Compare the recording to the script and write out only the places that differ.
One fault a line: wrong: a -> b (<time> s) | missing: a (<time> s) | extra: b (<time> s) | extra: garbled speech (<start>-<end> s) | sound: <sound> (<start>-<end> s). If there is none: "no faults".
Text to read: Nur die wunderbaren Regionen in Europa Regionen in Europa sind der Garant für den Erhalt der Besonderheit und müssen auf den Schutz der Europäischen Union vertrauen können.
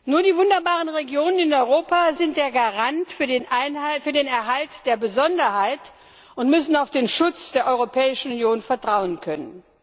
missing: Regionen in Europa (2.1 s)